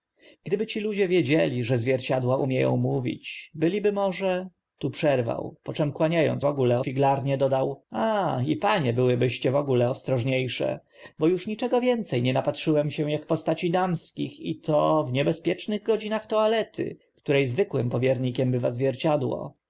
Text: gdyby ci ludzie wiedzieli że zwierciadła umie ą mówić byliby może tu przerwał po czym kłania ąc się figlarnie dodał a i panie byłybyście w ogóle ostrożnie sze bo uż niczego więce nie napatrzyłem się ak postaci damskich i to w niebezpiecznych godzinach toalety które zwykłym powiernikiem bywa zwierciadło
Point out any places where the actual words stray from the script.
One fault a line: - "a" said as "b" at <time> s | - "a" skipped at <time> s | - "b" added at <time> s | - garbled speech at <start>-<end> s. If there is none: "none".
- "się" said as "ogóle" at 6.4 s